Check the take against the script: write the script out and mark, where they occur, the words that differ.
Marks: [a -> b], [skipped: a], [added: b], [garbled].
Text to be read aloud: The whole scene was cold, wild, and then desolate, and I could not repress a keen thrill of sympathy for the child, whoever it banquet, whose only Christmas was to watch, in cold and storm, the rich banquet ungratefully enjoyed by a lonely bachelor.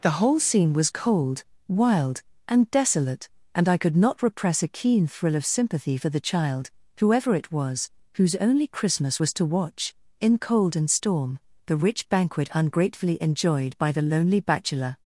The whole scene was cold, wild, and [skipped: then] desolate, and I could not repress a keen thrill of sympathy for the child, whoever it [banquet, -> was] whose only Christmas was to watch, in cold and storm, the rich banquet ungratefully enjoyed by [a -> the] lonely bachelor.